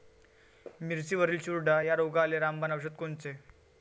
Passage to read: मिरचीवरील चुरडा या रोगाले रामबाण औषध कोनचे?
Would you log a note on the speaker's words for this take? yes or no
no